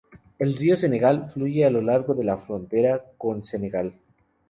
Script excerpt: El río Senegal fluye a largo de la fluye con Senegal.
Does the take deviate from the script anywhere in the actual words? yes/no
yes